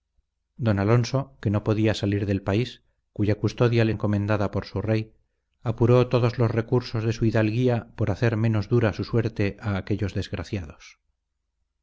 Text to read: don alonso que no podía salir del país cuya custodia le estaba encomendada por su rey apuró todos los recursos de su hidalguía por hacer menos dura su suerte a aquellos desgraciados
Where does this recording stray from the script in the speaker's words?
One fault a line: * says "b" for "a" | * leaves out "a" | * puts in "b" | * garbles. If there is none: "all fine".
* leaves out "estaba"